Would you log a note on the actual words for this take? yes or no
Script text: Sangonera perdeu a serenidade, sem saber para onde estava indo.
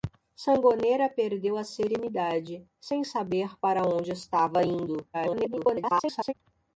yes